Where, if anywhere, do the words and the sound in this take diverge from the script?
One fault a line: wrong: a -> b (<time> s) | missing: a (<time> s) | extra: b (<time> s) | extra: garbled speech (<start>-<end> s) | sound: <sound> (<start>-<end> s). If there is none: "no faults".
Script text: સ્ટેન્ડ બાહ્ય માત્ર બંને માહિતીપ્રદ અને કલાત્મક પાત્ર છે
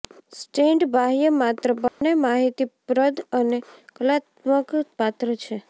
sound: dropout (1.9-2.0 s)